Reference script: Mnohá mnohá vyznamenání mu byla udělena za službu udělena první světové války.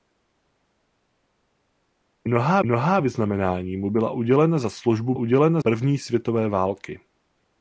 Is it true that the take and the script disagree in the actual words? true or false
false